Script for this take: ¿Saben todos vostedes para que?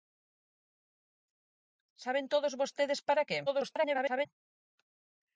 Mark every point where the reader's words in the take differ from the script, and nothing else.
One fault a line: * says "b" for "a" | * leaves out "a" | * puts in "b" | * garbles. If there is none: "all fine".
* garbles